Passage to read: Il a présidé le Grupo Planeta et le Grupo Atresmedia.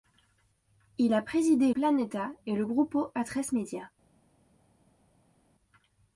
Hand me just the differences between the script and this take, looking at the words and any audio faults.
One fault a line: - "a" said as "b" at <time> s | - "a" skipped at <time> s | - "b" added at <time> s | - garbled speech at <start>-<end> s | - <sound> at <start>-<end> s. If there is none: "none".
- "le Grupo" skipped at 1.7 s